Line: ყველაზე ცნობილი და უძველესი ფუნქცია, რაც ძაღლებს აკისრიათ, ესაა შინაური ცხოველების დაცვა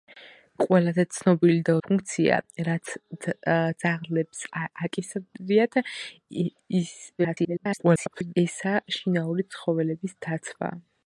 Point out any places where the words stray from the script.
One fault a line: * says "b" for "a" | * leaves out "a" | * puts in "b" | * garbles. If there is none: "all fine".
* leaves out "უძველესი"
* garbles